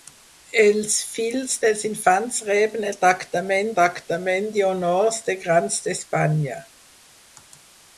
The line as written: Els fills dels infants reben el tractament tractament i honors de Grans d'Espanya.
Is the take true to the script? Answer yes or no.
yes